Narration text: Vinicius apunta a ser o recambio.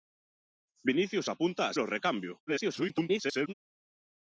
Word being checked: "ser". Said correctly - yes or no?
no